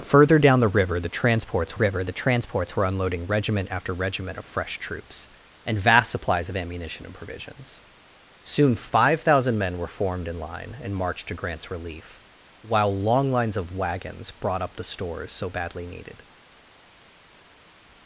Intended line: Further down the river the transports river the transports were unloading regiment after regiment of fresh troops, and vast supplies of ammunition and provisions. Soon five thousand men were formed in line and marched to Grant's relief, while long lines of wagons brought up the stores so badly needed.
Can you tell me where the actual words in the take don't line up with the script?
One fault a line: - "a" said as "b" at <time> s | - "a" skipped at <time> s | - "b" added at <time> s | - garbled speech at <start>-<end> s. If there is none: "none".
none